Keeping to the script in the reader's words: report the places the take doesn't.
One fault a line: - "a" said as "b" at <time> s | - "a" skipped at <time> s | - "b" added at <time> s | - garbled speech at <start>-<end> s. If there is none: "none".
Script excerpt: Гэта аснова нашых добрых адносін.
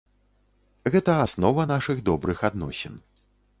none